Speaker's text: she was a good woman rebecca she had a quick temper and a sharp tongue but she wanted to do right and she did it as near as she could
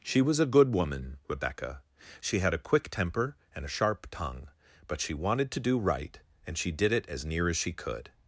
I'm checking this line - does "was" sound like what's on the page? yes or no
yes